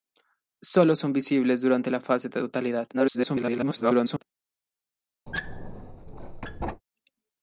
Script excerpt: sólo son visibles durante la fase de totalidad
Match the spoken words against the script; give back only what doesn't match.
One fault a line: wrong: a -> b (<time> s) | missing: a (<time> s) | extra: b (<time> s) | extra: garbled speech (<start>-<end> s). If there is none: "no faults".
extra: garbled speech (2.9-4.2 s)